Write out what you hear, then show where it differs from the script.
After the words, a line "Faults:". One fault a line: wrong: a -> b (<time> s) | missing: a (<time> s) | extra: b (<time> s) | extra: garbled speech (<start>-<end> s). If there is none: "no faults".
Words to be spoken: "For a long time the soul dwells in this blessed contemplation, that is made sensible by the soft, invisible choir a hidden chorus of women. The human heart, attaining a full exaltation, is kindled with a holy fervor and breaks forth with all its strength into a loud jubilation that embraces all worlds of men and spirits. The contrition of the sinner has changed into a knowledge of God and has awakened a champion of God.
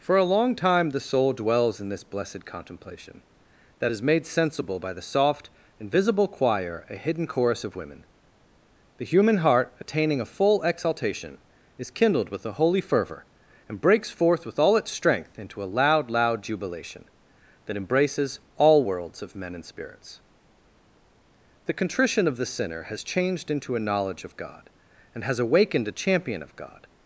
"For a long time the soul dwells in this blessed contemplation, that is made sensible by the soft, invisible choir a hidden chorus of women. The human heart, attaining a full exaltation, is kindled with a holy fervor and breaks forth with all its strength into a loud loud jubilation that embraces all worlds of men and spirits. The contrition of the sinner has changed into a knowledge of God and has awakened a champion of God.
Faults:
extra: loud (16.1 s)